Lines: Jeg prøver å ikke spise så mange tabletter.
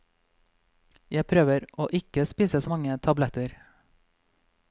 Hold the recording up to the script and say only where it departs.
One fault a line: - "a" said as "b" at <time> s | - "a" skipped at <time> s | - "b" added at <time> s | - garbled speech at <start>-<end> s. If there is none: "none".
none